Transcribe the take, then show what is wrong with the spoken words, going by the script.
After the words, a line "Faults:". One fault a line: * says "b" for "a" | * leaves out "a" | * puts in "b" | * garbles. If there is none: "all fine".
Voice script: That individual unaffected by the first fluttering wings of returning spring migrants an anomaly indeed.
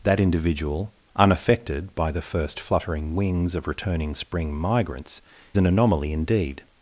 That individual unaffected by the first fluttering wings of returning spring migrants an anomaly indeed.
Faults:
all fine